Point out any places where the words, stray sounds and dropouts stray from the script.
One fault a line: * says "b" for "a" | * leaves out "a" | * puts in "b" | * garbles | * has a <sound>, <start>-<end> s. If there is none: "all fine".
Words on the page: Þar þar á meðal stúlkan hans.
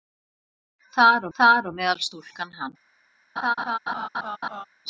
* has a laugh, 3.4-4.6 s